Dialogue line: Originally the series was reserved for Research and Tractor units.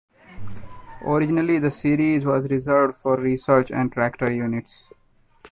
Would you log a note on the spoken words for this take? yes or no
no